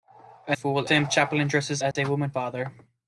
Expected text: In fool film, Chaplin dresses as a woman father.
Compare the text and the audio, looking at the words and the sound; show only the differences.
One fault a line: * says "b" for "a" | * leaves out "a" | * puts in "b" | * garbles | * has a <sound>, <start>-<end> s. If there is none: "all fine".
* has a dropout, 1.9-2.0 s